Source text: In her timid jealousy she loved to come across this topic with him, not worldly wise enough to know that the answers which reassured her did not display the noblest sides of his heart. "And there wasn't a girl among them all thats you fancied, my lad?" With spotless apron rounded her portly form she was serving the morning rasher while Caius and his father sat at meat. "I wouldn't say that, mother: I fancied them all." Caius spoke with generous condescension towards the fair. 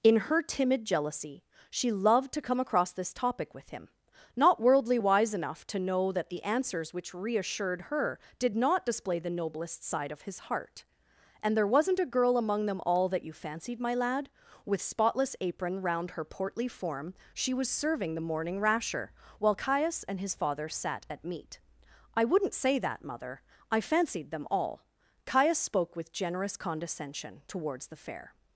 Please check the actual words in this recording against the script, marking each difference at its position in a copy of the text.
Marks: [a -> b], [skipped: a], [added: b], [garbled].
In her timid jealousy she loved to come across this topic with him, not worldly wise enough to know that the answers which reassured her did not display the noblest [sides -> side] of his heart. "And there wasn't a girl among them all [thats -> that] you fancied, my lad?" With spotless apron [rounded -> round] her portly form she was serving the morning rasher while Caius and his father sat at meat. "I wouldn't say that, mother: I fancied them all." Caius spoke with generous condescension towards the fair.